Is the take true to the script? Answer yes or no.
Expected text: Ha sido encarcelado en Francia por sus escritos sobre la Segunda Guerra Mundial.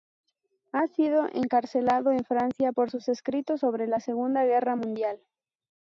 yes